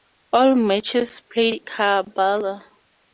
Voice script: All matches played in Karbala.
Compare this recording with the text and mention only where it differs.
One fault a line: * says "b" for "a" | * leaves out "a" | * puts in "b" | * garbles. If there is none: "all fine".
* leaves out "in"